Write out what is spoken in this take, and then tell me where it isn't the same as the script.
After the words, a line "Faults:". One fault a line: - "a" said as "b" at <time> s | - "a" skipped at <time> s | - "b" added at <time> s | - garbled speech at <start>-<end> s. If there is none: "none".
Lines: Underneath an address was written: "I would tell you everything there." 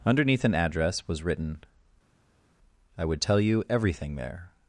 Underneath an address was written: "I would tell you everything there."
Faults:
none